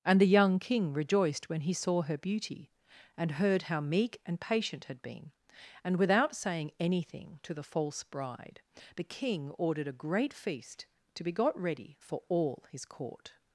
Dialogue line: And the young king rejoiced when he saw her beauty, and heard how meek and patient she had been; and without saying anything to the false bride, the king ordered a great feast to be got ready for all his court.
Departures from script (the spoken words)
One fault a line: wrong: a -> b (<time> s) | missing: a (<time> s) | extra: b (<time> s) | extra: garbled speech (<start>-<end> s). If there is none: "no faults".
missing: she (4.8 s)